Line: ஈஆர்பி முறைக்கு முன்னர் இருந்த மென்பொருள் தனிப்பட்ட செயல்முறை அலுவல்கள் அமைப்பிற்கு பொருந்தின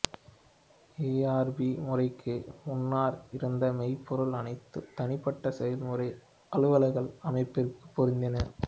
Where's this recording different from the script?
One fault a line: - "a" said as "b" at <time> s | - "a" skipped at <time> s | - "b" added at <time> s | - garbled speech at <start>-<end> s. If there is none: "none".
- "அனைத்தும்" added at 4.4 s